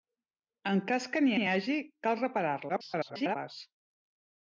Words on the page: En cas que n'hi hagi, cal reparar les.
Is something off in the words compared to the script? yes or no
yes